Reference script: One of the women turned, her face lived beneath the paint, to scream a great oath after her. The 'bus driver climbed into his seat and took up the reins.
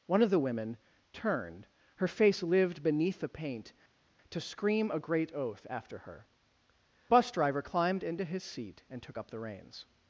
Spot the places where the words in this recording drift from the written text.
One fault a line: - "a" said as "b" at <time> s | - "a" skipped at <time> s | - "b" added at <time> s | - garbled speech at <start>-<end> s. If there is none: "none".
- "The" skipped at 6.3 s